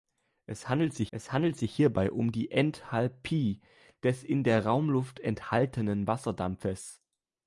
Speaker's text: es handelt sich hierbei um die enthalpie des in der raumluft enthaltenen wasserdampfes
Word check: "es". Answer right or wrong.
right